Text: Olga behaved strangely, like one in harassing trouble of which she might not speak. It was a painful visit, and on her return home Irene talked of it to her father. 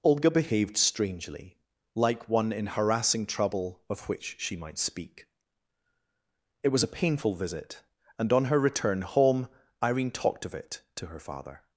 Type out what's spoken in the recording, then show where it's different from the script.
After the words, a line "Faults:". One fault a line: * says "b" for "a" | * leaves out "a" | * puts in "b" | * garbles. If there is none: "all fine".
Olga behaved strangely, like one in harassing trouble of which she might speak. It was a painful visit, and on her return home Irene talked of it to her father.
Faults:
* leaves out "not"